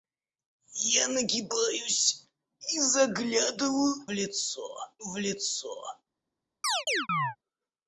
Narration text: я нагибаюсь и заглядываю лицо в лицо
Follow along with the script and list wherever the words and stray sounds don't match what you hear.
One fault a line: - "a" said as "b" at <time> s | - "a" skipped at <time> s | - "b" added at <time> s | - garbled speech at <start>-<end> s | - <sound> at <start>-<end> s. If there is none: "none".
- chirp at 6.6-7.4 s